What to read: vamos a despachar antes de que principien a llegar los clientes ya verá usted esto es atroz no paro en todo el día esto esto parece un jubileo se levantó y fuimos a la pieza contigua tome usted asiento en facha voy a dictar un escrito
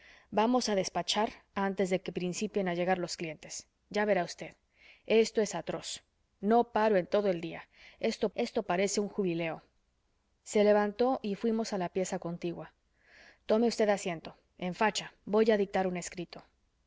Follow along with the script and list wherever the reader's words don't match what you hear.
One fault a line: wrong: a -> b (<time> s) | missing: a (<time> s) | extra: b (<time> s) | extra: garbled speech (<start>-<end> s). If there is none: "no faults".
no faults